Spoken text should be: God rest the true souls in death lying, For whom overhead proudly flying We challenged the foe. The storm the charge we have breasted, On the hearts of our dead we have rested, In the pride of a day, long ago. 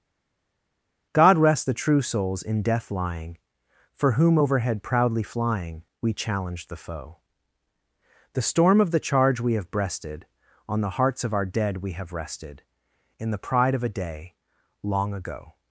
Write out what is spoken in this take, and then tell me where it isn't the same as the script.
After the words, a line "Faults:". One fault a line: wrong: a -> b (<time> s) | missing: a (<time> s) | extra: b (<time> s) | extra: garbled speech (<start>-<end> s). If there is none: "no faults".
God rest the true souls in death lying, For whom overhead proudly flying We challenged the foe. The storm of the charge we have breasted, On the hearts of our dead we have rested, In the pride of a day, long ago.
Faults:
extra: of (8.8 s)